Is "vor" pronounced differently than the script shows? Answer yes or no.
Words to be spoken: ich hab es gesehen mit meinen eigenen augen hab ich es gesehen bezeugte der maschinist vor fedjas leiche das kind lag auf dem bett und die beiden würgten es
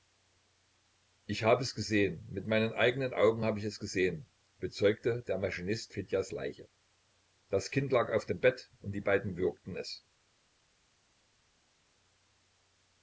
yes